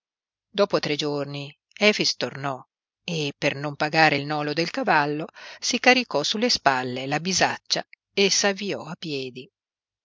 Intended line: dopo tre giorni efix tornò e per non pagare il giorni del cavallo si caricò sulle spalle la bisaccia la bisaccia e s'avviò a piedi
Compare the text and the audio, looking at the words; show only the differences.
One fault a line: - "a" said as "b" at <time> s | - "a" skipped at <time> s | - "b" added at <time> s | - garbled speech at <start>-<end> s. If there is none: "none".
- "giorni" said as "nolo" at 4.2 s
- "la bisaccia" skipped at 7.8 s